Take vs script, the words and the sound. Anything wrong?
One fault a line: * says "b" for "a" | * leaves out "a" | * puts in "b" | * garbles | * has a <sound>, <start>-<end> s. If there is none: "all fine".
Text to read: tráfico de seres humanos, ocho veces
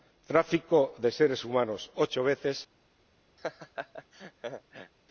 * has a laugh, 3.4-4.9 s